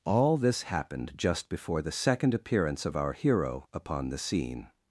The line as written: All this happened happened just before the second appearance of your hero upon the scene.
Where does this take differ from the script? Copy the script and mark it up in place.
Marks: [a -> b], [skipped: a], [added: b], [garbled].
All this happened [skipped: happened] just before the second appearance of [your -> our] hero upon the scene.